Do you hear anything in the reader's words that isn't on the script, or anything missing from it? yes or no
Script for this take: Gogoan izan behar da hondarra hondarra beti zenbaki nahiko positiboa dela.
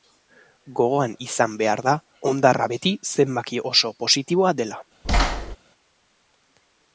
yes